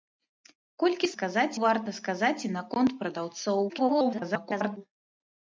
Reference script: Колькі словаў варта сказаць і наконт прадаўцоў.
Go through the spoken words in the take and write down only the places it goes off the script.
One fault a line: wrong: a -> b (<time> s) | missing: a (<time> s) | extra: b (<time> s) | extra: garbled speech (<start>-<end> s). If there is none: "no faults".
wrong: словаў -> сказаць (1.1 s)
extra: garbled speech (3.7-4.8 s)